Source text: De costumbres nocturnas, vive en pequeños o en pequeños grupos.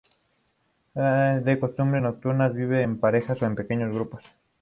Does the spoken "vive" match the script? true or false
true